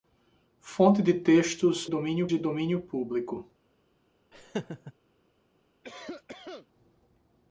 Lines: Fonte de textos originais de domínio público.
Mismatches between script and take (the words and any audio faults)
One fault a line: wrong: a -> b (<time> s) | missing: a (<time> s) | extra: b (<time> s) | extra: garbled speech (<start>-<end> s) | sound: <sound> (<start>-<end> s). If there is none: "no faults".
wrong: originais -> domínio (1.8 s)
sound: laugh (4.3-4.9 s)
sound: cough (5.8-6.7 s)